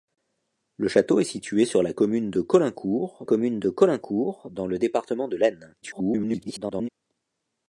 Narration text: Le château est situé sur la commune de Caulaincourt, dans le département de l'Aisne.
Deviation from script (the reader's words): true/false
true